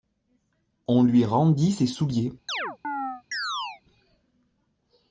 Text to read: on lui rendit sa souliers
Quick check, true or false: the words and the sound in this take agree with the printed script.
false